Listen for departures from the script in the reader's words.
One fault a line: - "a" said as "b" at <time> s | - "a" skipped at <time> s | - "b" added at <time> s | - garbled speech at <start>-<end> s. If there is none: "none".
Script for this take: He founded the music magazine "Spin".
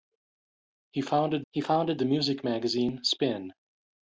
- "he founded" added at 1.5 s